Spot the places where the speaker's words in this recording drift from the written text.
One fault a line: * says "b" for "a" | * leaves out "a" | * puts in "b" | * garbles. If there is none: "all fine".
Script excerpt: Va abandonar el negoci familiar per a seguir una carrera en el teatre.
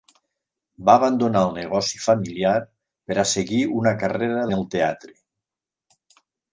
all fine